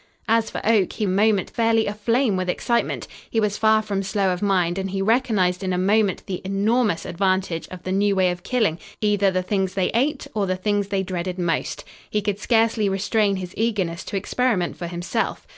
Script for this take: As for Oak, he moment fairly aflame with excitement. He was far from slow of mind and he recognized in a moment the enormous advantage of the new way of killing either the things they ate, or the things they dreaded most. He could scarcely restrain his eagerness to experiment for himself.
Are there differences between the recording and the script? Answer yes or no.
no